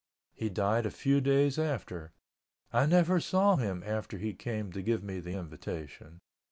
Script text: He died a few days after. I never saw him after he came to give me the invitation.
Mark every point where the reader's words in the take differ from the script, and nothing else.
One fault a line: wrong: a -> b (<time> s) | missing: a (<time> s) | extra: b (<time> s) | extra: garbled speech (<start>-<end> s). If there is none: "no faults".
no faults